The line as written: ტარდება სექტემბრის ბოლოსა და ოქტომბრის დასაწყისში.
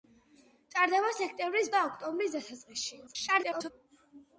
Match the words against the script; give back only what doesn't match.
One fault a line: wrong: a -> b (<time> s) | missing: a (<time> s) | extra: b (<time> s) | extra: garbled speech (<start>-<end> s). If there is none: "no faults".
missing: ბოლოსა (1.7 s)
extra: garbled speech (3.1-3.7 s)